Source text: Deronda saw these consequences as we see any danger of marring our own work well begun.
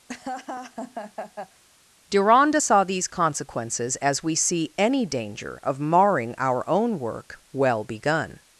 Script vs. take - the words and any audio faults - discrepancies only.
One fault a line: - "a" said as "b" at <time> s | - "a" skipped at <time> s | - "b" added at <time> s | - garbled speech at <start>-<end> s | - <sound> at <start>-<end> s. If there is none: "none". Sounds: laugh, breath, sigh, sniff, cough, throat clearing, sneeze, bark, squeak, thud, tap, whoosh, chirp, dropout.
- laugh at 0.1-1.6 s